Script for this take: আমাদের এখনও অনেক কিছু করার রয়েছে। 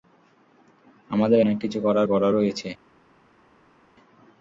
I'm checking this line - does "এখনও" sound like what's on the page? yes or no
no